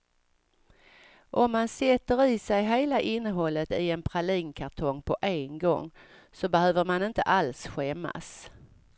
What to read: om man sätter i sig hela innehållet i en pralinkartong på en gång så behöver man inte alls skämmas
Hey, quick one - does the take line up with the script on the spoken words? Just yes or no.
yes